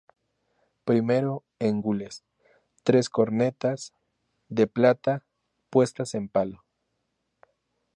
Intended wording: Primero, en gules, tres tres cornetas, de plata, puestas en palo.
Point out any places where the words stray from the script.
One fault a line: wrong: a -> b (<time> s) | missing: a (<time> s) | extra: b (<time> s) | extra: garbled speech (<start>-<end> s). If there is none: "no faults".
missing: tres (3.1 s)